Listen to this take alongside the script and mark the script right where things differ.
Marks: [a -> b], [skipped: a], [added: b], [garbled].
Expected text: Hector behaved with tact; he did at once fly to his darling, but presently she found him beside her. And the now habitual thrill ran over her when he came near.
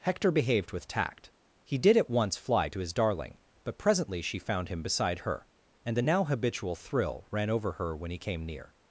Hector behaved with tact; he did at once fly to his darling, but presently she found him beside her. And the now habitual thrill ran over her when he came near.